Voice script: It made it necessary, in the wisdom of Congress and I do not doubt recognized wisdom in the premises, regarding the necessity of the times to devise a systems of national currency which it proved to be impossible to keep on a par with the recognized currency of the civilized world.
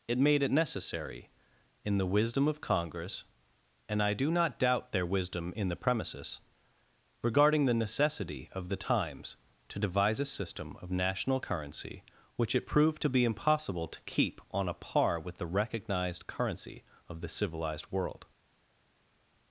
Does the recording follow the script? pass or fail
fail